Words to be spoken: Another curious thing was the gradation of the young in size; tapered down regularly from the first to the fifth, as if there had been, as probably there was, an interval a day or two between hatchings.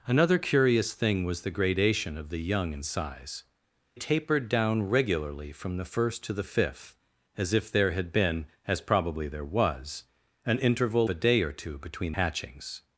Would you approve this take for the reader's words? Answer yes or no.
yes